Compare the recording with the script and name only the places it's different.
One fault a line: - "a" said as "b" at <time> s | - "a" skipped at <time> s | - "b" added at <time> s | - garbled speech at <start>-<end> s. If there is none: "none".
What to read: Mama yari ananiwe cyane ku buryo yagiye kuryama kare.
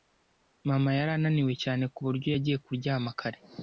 none